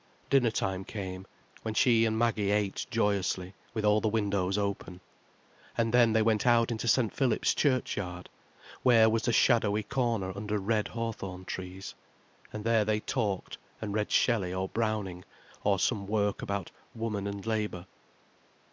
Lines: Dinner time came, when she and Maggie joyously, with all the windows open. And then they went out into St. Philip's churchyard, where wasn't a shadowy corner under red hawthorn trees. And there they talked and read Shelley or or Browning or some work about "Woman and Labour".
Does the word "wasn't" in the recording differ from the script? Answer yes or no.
yes